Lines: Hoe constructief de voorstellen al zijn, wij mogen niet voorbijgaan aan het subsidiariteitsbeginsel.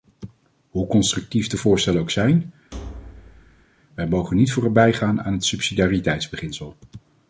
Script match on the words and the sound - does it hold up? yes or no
no